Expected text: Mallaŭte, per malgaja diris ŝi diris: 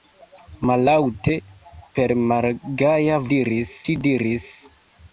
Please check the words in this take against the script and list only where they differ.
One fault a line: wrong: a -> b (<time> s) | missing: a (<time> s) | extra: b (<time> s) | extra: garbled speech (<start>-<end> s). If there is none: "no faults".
no faults